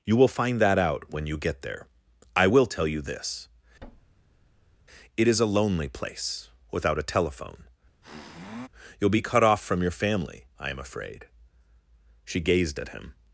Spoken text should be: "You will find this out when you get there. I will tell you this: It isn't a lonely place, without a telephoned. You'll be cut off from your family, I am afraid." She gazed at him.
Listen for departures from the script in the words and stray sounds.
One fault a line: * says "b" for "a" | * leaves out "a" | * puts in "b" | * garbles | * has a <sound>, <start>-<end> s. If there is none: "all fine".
* says "that" for "this"
* has a thud, 3.8-4.8 s
* says "is" for "isn't"
* says "telephone" for "telephoned"
* has a sniff, 8.0-8.7 s